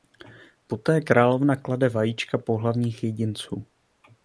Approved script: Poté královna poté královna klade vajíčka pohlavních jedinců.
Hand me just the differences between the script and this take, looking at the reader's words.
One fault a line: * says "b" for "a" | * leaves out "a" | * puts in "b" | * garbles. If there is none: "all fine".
* leaves out "poté královna"